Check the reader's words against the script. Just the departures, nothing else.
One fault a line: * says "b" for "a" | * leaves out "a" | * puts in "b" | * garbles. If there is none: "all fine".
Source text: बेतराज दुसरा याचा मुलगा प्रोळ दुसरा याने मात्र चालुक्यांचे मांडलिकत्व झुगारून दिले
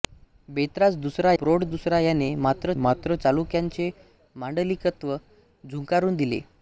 * leaves out "याचा मुलगा"
* puts in "मात्र"